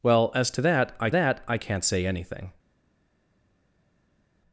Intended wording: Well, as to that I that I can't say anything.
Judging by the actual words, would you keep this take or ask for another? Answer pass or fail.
pass